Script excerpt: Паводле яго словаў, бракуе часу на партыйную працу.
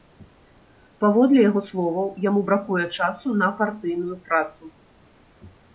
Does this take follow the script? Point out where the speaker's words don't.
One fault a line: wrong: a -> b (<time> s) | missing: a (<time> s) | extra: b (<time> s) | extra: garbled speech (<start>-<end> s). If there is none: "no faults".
extra: яму (2.3 s)